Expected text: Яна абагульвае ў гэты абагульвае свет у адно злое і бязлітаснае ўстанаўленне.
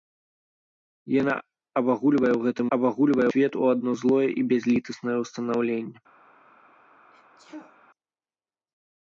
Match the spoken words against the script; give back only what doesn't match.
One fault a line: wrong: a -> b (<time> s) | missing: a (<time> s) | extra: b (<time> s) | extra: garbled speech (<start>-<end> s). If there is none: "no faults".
no faults